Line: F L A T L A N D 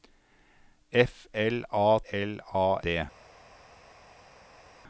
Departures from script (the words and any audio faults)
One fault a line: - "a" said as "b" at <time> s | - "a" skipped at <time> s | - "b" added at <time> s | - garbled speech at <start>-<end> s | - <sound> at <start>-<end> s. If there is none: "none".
- "T" skipped at 2.0 s
- "N" skipped at 2.8 s